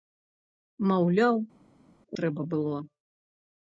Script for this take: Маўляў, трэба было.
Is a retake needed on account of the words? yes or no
no